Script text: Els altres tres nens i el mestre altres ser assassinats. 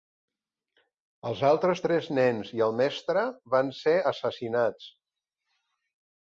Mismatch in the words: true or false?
true